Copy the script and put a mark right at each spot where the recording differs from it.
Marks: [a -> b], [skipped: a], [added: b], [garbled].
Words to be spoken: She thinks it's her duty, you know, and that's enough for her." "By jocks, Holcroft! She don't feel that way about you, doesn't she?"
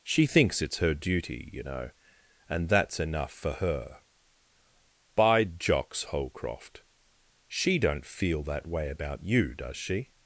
She thinks it's her duty, you know, and that's enough for her." "By jocks, Holcroft! She don't feel that way about you, [doesn't -> does] she?"